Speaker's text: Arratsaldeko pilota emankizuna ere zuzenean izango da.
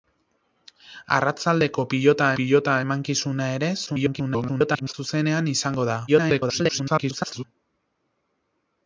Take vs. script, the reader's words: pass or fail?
fail